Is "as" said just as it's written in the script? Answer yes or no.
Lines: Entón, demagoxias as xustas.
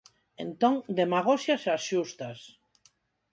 yes